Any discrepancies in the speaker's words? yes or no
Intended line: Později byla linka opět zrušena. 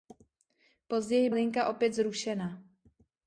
yes